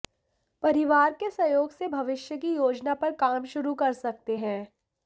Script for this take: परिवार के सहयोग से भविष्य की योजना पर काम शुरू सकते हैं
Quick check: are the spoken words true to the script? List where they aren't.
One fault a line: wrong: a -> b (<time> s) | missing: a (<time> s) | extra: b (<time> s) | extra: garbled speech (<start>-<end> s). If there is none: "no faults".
extra: कर (3.7 s)